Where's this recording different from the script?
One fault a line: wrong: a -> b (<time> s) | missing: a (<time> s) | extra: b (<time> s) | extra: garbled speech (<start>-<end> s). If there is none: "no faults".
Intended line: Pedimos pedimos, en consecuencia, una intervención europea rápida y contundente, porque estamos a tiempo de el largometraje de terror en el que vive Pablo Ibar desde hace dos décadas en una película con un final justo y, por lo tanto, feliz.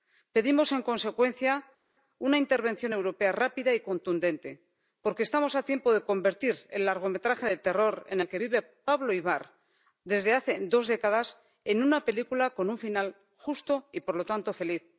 missing: pedimos (0.7 s)
extra: convertir (6.0 s)